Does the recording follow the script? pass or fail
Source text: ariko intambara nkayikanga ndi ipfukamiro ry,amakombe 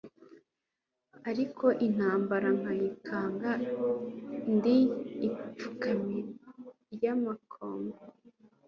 pass